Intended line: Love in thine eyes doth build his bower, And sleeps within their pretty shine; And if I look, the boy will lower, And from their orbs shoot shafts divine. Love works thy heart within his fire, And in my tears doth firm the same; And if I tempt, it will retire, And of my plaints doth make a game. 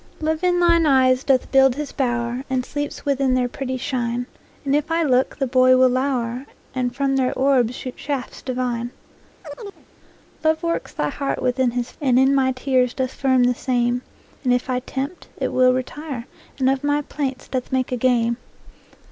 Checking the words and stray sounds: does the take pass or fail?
fail